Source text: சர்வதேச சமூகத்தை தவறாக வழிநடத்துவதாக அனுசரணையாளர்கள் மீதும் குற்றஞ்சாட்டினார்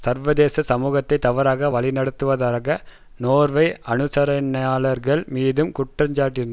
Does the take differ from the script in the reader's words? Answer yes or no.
yes